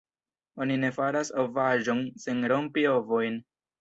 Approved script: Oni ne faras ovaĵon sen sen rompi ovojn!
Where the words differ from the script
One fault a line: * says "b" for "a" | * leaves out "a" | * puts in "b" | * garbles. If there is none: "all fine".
* leaves out "sen"